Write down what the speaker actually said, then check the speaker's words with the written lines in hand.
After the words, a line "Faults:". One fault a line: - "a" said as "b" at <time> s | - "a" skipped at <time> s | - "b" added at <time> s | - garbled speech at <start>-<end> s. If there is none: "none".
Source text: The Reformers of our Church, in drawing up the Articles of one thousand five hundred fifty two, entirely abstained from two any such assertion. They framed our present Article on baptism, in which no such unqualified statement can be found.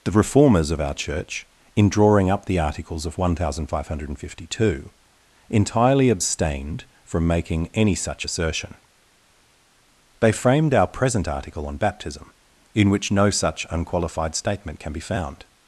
The Reformers of our Church, in drawing up the Articles of one thousand five hundred fifty two, entirely abstained from making any such assertion. They framed our present Article on baptism, in which no such unqualified statement can be found.
Faults:
- "two" said as "making" at 7.3 s